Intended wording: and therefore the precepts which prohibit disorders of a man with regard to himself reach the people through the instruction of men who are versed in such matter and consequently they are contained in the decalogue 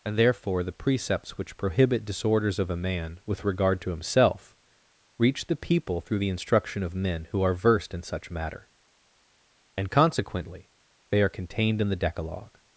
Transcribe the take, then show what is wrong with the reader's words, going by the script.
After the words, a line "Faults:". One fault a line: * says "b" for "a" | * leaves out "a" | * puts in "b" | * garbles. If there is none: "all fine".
and therefore the precepts which prohibit disorders of a man with regard to himself reach the people through the instruction of men who are versed in such matter and consequently they are contained in the decalogue
Faults:
all fine